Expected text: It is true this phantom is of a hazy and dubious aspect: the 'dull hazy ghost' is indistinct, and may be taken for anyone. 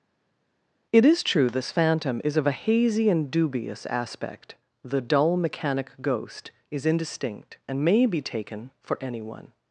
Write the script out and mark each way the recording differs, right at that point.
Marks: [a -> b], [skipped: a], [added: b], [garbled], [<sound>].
It is true this phantom is of a hazy and dubious aspect: the 'dull [hazy -> mechanic] ghost' is indistinct, and may be taken for anyone.